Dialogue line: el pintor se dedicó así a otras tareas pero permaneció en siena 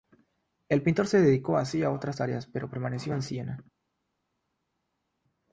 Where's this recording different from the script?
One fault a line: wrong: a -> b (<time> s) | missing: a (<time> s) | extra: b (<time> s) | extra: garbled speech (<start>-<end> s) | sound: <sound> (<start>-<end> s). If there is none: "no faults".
no faults